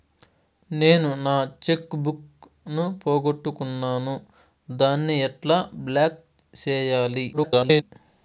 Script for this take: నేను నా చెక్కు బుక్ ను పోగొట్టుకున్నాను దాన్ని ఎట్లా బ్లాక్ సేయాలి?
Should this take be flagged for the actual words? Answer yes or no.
yes